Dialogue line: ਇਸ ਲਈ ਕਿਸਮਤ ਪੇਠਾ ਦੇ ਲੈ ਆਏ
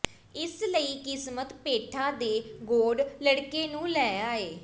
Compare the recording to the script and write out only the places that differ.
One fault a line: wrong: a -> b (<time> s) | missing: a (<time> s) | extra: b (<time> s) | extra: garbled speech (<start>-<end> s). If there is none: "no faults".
extra: ਗੌਡ ਲੜਕੇ ਨੂੰ (2.6 s)